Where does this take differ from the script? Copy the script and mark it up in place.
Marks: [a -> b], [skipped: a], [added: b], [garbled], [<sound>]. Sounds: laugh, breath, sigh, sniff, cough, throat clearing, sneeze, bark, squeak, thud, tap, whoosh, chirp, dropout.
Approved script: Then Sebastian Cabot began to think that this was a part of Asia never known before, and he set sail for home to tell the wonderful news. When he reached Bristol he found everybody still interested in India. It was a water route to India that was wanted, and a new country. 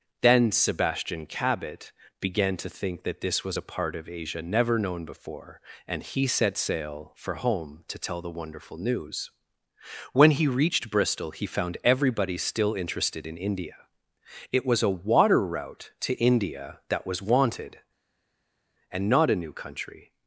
Then Sebastian Cabot began to think that this was a part of Asia never known before, and he set sail for home to tell the wonderful news. When he reached Bristol he found everybody still interested in India. It was a water route to India that was wanted, and [added: not] a new country.